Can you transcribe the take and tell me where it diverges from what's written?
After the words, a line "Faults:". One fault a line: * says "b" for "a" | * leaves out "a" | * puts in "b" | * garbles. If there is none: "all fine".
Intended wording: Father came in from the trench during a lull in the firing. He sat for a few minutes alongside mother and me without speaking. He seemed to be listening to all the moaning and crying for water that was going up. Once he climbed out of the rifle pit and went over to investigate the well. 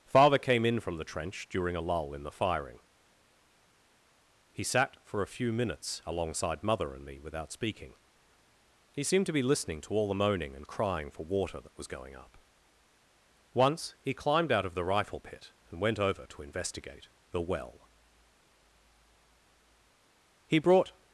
Father came in from the trench during a lull in the firing. He sat for a few minutes alongside mother and me without speaking. He seemed to be listening to all the moaning and crying for water that was going up. Once he climbed out of the rifle pit and went over to investigate the well. He brought
Faults:
* puts in "He brought"